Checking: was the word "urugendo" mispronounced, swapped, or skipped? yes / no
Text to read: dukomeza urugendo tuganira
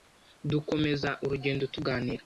no